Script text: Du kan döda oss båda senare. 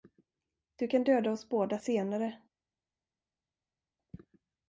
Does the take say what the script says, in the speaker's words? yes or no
yes